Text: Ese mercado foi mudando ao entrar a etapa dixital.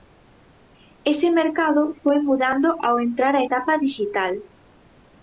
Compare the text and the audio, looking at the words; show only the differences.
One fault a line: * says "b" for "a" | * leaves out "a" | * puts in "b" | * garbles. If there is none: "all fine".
all fine